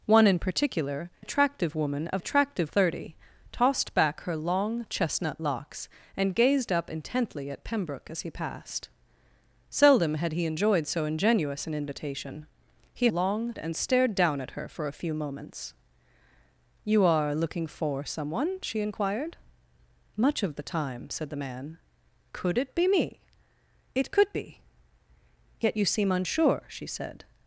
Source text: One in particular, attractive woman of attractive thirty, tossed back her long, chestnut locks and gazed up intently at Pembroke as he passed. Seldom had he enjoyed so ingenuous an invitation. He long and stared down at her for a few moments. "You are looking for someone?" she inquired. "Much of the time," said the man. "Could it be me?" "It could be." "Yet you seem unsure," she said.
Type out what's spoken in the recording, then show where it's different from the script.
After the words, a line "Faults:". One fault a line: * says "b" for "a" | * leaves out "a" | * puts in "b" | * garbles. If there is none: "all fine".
One in particular, attractive woman of attractive thirty, tossed back her long, chestnut locks and gazed up intently at Pembroke as he passed. Seldom had he enjoyed so ingenuous an invitation. He long and stared down at her for a few moments. "You are looking for someone?" she inquired. "Much of the time," said the man. "Could it be me?" "It could be." "Yet you seem unsure," she said.
Faults:
all fine